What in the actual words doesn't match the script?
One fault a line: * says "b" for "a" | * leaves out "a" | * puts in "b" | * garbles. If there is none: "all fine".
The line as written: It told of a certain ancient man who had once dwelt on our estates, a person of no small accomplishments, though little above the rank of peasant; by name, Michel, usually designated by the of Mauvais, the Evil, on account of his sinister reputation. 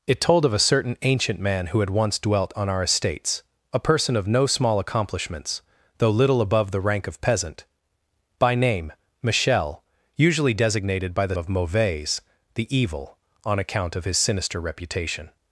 all fine